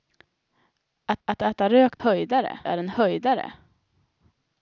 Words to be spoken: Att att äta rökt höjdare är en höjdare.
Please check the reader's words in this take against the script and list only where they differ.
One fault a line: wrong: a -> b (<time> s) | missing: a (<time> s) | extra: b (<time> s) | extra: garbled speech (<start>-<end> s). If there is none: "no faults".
no faults